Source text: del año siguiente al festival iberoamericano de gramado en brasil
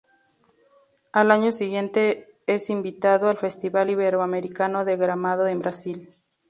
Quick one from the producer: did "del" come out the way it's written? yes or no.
no